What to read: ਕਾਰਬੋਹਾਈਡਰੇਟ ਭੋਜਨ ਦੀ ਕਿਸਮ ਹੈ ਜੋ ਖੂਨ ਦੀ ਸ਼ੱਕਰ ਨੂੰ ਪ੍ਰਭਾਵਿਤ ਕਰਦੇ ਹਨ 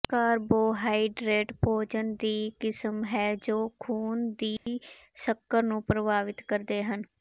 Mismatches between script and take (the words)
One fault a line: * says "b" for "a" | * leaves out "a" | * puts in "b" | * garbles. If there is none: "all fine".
all fine